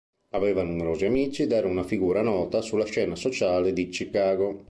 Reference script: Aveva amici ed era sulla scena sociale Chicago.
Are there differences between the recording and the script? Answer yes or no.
yes